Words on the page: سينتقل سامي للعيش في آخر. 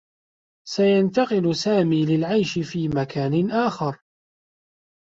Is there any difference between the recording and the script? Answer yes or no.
yes